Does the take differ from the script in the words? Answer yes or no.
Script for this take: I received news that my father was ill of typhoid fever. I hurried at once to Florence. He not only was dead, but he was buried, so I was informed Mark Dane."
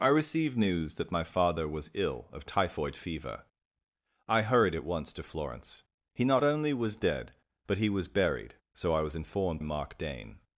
no